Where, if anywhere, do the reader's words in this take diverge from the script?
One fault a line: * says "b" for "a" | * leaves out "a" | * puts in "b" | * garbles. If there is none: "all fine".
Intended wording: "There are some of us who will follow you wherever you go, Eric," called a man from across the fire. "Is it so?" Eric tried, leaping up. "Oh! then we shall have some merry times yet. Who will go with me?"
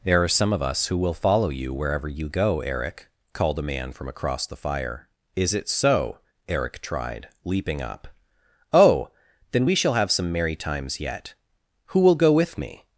all fine